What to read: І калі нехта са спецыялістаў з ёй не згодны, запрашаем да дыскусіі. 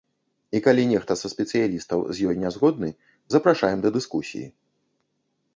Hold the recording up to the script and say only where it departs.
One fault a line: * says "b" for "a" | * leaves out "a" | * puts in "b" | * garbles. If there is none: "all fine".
all fine